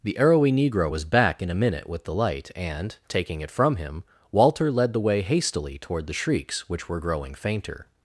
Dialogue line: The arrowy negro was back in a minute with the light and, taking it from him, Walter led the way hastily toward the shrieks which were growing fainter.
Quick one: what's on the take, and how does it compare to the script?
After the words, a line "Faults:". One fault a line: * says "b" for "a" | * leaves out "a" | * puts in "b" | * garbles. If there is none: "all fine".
The arrowy negro was back in a minute with the light and, taking it from him, Walter led the way hastily toward the shrieks which were growing fainter.
Faults:
all fine